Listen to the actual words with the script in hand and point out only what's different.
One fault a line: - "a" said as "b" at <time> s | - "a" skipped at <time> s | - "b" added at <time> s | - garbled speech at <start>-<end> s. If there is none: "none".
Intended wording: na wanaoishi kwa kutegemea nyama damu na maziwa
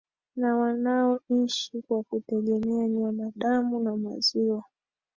none